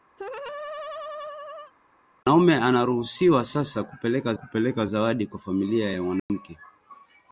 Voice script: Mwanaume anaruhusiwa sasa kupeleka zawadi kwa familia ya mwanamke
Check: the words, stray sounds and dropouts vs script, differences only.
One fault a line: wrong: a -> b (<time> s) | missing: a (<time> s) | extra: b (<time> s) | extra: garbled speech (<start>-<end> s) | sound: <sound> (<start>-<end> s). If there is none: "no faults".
sound: laugh (0.2-1.7 s)
extra: kupeleka (4.3 s)
sound: dropout (6.2-6.3 s)